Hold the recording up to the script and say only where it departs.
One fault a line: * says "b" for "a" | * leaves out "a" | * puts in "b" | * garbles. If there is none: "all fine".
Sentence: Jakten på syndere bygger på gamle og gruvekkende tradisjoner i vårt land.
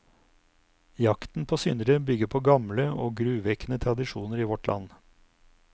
all fine